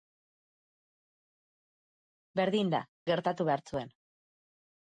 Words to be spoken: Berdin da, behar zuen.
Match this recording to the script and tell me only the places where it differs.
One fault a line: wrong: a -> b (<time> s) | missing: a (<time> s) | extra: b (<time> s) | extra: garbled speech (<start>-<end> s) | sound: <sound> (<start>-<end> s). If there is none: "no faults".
extra: gertatu (3.1 s)